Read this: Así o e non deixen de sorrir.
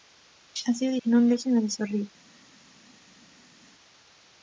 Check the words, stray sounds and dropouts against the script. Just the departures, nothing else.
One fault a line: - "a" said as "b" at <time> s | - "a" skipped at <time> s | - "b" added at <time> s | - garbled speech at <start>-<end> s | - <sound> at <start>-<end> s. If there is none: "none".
none